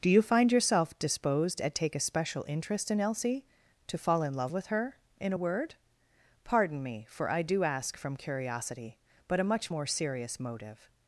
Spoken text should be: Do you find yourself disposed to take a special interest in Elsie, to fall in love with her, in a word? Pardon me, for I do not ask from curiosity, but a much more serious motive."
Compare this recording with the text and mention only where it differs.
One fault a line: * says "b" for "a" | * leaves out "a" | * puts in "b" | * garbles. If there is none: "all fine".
* says "at" for "to"
* leaves out "not"